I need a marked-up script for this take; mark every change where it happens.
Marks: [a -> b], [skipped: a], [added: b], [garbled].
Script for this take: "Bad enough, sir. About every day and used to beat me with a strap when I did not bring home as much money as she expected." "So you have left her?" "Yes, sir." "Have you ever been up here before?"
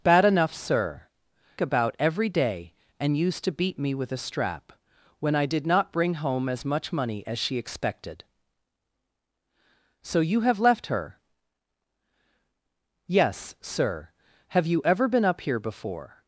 "Bad enough, sir. About every day and used to beat me with a strap when I did not bring home as much money as she expected." "So you have left her?" "Yes, sir." "Have you ever been up here before?"